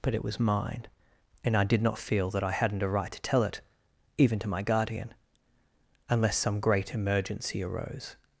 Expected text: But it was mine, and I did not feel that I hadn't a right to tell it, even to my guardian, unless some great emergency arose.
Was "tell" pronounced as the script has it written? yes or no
yes